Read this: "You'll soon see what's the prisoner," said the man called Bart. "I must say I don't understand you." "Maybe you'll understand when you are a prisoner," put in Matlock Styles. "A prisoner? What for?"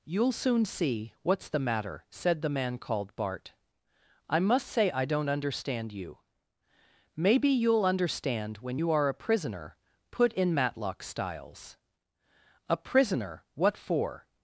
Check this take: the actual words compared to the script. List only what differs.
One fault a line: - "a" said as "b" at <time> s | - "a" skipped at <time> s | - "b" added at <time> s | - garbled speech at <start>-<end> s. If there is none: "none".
- "prisoner" said as "matter" at 1.6 s